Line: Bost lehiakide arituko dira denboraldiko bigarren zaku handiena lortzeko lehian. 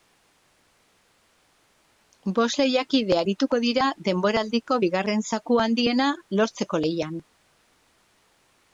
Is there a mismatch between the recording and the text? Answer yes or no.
no